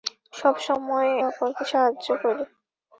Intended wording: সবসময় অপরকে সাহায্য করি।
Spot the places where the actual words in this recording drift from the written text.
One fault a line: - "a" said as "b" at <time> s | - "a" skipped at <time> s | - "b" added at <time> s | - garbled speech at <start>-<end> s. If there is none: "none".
none